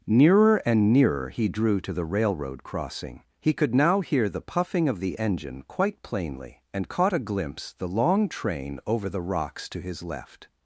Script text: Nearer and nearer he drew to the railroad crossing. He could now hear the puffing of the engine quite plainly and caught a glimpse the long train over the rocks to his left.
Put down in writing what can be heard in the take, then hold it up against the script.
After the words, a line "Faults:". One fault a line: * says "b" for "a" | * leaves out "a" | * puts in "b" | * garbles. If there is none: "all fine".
Nearer and nearer he drew to the railroad crossing. He could now hear the puffing of the engine quite plainly and caught a glimpse the long train over the rocks to his left.
Faults:
all fine